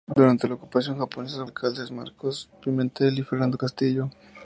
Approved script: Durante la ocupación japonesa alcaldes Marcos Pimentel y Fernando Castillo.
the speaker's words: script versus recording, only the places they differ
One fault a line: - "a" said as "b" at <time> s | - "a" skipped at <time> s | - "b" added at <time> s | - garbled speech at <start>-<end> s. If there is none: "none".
none